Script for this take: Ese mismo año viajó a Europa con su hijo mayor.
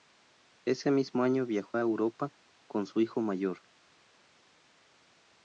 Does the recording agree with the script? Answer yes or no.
yes